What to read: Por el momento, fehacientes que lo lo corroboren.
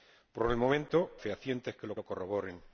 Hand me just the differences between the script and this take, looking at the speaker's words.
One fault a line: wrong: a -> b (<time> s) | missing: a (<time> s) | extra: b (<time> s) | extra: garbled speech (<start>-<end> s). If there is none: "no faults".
no faults